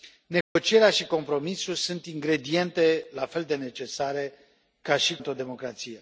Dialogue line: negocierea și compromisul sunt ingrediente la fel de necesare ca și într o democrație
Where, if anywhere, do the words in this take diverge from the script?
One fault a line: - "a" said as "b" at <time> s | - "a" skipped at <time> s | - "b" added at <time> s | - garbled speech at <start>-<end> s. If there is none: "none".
none